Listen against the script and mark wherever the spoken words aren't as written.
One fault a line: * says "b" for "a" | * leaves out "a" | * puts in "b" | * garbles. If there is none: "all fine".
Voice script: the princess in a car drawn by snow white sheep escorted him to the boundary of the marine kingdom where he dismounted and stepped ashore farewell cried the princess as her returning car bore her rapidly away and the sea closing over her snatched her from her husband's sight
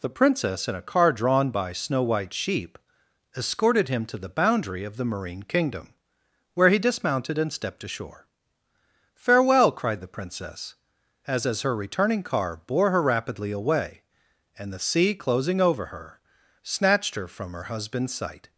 * puts in "as"